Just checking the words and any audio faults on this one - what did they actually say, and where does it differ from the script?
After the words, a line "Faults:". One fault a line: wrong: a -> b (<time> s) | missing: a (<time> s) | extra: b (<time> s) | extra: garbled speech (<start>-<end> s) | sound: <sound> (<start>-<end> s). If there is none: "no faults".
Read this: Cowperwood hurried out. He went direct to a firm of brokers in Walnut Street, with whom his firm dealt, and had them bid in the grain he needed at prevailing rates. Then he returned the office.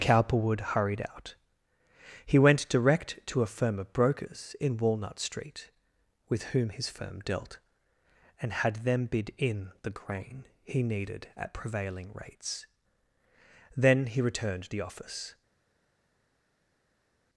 Cowperwood hurried out. He went direct to a firm of brokers in Walnut Street, with whom his firm dealt, and had them bid in the grain he needed at prevailing rates. Then he returned the office.
Faults:
no faults